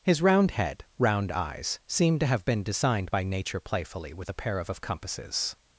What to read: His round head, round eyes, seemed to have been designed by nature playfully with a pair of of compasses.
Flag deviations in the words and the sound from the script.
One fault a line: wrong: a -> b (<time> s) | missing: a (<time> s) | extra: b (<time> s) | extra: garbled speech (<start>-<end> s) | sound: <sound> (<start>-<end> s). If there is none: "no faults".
no faults